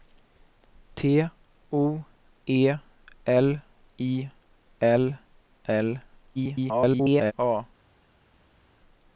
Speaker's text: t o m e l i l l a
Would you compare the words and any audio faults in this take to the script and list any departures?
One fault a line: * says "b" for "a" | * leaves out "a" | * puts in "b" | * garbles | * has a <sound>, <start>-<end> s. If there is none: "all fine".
* leaves out "m"
* garbles